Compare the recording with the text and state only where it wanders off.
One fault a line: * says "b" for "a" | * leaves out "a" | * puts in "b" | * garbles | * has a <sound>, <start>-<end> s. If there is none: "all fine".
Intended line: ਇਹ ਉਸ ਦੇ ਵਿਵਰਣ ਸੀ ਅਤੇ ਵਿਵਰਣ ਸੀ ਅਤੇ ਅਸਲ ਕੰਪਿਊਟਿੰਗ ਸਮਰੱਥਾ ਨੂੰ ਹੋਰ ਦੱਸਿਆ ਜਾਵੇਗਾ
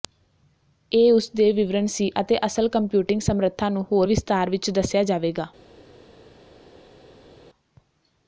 * leaves out "ਵਿਵਰਣ ਸੀ ਅਤੇ"
* puts in "ਵਿਸਥਾਰ ਵਿੱਚ"